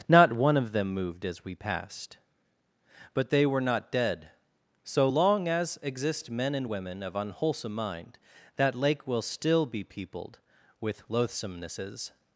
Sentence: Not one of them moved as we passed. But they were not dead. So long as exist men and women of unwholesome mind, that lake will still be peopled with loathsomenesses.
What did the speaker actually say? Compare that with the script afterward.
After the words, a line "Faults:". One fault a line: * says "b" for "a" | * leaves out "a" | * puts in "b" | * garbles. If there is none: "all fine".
Not one of them moved as we passed. But they were not dead. So long as exist men and women of unwholesome mind, that lake will still be peopled with loathsomenesses.
Faults:
all fine